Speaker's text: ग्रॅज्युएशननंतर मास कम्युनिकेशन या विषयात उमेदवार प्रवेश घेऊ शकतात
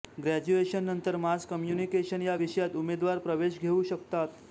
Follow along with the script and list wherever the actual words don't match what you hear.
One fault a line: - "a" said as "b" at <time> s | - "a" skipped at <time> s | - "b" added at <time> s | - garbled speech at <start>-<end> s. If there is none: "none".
none